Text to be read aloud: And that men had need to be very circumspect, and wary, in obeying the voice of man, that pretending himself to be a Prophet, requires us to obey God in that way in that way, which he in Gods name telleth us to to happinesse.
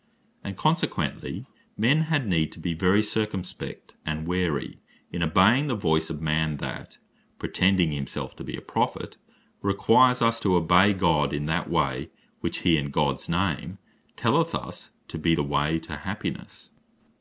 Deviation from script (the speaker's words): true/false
true